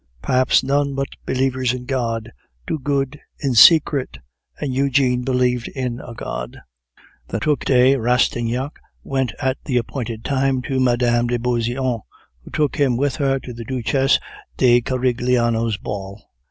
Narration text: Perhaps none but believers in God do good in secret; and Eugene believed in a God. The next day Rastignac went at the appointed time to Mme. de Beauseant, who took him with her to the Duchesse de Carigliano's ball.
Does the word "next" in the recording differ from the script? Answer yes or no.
yes